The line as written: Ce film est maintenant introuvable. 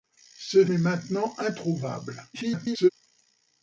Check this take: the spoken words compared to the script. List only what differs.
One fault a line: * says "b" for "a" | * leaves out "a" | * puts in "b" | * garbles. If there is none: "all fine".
* leaves out "film"
* garbles